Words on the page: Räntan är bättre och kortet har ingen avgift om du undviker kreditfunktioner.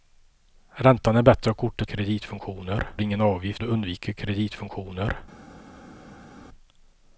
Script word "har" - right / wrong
wrong